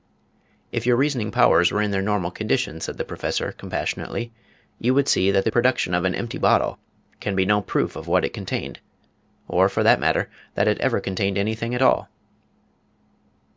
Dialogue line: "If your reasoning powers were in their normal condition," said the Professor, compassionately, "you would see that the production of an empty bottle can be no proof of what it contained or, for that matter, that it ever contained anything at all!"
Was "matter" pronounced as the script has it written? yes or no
yes